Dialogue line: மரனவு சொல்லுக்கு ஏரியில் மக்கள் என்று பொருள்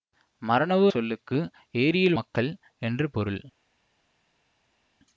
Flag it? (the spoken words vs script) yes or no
no